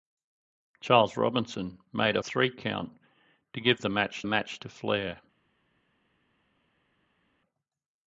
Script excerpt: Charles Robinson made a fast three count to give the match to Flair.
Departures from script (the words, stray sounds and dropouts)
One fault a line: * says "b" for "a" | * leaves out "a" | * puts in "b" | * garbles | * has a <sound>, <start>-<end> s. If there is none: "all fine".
* leaves out "fast"
* puts in "match"